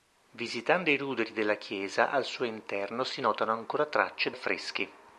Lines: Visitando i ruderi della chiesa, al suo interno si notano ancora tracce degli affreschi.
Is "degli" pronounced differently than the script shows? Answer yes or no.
yes